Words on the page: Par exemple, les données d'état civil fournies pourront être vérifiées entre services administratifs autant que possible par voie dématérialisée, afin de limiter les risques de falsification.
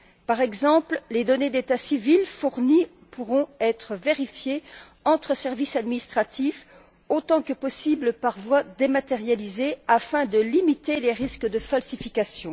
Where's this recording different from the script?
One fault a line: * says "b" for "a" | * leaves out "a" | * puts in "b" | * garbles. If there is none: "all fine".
all fine